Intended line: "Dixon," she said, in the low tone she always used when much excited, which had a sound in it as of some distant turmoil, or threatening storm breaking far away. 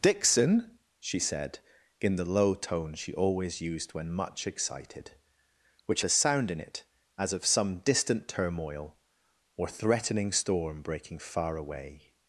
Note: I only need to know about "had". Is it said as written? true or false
false